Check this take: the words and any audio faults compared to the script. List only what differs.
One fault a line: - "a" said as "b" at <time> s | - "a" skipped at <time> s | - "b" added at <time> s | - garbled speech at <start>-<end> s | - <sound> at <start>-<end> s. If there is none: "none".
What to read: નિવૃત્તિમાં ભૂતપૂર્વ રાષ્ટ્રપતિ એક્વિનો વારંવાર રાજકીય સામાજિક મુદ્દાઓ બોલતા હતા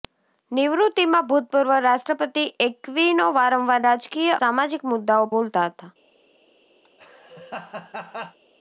- laugh at 6.8-8.4 s